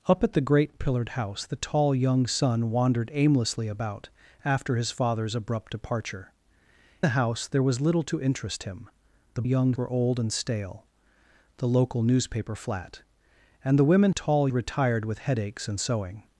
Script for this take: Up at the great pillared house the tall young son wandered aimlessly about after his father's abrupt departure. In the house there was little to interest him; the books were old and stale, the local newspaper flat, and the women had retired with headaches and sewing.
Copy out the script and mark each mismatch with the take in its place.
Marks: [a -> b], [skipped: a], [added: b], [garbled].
Up at the great pillared house the tall young son wandered aimlessly about after his father's abrupt departure. [skipped: In] the house there was little to interest him; the [books -> young] were old and stale, the local newspaper flat, and the women [had -> tall] retired with headaches and sewing.